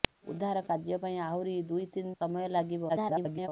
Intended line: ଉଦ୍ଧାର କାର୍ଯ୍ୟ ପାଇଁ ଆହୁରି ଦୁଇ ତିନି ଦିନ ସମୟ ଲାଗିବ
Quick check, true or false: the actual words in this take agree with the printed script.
false